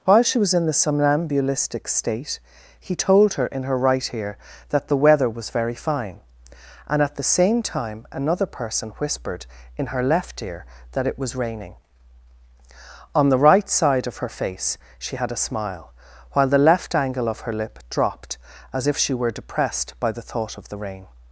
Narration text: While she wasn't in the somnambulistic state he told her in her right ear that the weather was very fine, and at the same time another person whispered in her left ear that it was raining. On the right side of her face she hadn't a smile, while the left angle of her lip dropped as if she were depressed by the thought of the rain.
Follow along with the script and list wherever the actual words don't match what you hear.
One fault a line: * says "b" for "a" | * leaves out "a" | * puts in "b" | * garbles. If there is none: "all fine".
* says "was" for "wasn't"
* says "had" for "hadn't"